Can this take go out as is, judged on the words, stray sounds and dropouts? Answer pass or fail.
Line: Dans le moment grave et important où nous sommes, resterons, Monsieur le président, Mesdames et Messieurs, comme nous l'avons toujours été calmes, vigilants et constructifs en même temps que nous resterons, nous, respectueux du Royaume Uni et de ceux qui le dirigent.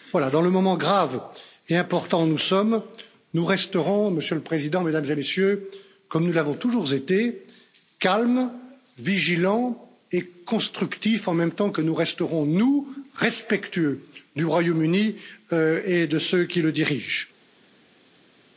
fail